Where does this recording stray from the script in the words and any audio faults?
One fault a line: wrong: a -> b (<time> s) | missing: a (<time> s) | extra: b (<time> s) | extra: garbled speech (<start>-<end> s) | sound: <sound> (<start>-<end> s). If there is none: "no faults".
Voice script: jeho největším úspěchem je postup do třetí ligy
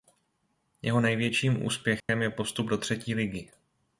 sound: dropout (2.0-2.1 s)